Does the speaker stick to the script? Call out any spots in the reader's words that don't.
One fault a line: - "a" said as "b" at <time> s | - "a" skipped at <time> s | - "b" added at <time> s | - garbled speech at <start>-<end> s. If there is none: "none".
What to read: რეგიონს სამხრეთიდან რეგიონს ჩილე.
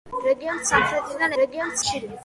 none